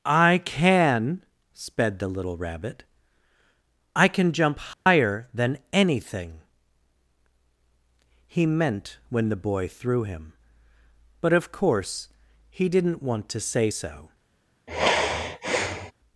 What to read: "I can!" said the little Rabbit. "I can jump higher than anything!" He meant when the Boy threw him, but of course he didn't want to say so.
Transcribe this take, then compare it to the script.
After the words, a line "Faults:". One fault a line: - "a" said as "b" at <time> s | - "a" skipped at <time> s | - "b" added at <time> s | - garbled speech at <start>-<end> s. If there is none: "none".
"I can!" sped the little Rabbit. "I can jump higher than anything!" He meant when the Boy threw him, but of course he didn't want to say so.
Faults:
- "said" said as "sped" at 1.5 s